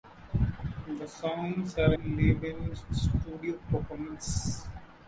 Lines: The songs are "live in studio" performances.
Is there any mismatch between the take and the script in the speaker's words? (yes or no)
no